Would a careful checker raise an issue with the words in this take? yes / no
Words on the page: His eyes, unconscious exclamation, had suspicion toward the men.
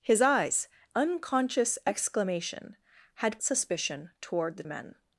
no